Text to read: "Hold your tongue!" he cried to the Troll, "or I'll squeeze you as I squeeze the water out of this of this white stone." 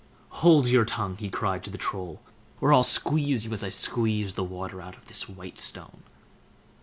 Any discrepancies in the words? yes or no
yes